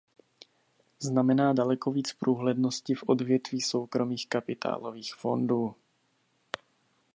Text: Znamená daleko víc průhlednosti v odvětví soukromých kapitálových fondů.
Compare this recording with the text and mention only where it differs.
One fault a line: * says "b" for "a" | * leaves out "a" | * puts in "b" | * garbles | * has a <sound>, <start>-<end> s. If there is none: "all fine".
all fine